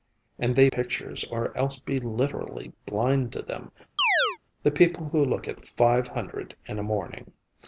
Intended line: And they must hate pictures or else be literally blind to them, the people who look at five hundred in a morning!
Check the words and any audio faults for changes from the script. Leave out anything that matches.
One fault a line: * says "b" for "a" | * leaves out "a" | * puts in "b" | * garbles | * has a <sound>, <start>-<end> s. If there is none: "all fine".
* leaves out "must hate"
* has a chirp, 4.0-4.4 s